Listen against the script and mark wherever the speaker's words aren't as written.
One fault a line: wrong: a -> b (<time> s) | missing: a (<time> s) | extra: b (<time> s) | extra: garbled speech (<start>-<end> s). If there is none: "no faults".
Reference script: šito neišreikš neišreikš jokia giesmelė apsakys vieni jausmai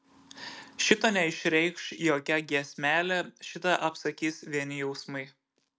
missing: neišreikš (1.9 s)
extra: šitą (3.5 s)